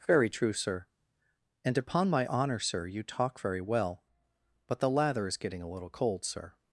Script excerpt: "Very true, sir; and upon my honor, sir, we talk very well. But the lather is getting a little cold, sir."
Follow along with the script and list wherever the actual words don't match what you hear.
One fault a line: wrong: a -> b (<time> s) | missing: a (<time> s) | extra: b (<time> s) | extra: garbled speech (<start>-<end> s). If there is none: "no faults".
wrong: we -> you (2.9 s)